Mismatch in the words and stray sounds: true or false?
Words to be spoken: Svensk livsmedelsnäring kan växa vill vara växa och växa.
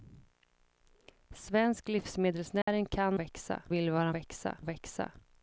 true